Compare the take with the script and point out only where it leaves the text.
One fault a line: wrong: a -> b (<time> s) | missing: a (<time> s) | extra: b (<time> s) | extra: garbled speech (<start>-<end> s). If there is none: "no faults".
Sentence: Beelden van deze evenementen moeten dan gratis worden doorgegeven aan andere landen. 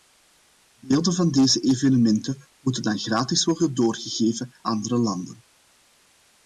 missing: aan (4.5 s)